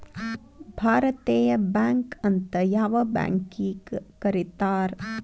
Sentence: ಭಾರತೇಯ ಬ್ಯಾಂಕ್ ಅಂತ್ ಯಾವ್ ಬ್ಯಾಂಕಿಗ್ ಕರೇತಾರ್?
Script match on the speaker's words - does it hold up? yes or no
yes